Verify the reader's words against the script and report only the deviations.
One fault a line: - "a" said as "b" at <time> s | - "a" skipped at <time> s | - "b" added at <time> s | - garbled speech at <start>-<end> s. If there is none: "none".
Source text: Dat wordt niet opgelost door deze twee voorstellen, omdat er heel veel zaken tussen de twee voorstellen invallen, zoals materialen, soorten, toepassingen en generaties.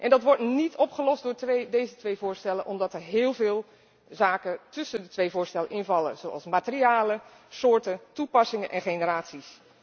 none